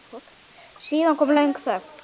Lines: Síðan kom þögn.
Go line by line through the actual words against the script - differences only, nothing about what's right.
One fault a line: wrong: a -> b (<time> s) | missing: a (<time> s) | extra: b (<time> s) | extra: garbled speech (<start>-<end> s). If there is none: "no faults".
extra: löng (1.3 s)